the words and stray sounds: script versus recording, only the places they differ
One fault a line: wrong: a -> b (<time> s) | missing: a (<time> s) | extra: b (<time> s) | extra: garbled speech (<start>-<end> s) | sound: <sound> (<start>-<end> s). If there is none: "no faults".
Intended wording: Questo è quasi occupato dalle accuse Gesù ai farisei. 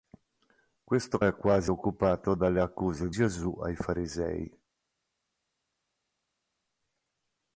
no faults